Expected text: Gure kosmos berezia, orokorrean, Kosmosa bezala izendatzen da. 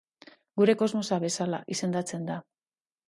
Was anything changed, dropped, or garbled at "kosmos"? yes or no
yes